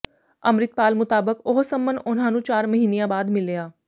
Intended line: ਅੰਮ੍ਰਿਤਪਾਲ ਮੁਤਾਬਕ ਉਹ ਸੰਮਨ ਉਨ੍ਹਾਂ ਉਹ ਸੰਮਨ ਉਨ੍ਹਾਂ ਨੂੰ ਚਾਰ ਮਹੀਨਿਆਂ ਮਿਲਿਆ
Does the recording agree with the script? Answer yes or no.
no